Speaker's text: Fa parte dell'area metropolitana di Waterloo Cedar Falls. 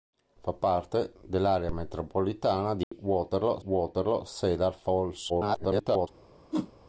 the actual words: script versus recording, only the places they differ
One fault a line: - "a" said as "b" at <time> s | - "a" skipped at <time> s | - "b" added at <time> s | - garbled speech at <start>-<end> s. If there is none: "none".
- "Waterloo" added at 3.6 s
- garbled speech at 5.3-6.1 s